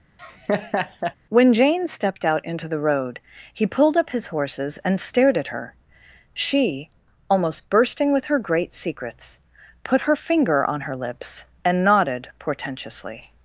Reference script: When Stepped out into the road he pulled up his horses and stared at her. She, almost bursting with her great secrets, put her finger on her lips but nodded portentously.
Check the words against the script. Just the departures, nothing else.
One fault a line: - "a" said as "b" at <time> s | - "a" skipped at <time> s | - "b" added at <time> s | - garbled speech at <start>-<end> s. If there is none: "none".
- "Jane" added at 1.5 s
- "but" said as "and" at 11.6 s